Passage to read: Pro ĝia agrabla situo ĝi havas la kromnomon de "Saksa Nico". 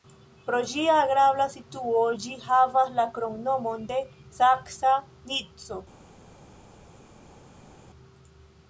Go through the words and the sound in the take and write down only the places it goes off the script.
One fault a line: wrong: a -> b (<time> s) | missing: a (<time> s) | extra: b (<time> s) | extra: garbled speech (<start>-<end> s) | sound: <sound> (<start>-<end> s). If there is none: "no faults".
no faults